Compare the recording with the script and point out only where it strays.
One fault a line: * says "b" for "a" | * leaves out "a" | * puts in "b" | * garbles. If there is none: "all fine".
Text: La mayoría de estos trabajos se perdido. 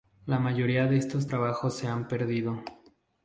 * puts in "han"